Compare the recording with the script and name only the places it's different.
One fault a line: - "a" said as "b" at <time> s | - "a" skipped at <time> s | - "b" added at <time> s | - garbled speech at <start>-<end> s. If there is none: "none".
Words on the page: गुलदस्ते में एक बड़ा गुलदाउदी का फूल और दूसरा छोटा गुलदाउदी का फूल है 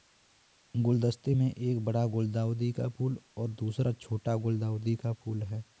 none